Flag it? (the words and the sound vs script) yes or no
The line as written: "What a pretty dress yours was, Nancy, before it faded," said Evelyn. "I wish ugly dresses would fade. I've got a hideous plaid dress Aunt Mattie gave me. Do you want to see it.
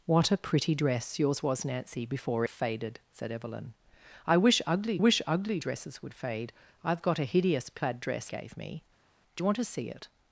yes